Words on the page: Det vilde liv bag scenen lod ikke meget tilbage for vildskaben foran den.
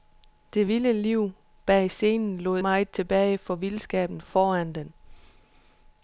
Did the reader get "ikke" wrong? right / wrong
wrong